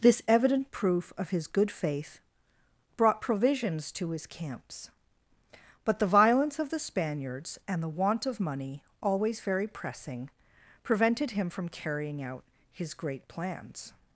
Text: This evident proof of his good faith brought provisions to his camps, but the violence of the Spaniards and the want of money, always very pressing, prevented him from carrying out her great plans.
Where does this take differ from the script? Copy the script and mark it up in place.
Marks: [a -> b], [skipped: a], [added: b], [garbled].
This evident proof of his good faith brought provisions to his camps, but the violence of the Spaniards and the want of money, always very pressing, prevented him from carrying out [her -> his] great plans.